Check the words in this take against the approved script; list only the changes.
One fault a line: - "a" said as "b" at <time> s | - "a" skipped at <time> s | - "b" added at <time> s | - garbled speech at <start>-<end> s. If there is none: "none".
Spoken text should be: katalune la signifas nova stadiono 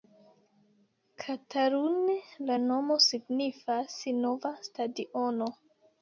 - "nomo" added at 2.6 s